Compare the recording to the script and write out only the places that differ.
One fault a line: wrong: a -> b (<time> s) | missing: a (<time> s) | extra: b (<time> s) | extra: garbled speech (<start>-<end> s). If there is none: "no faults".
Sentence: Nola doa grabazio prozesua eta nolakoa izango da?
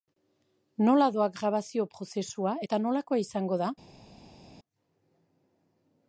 no faults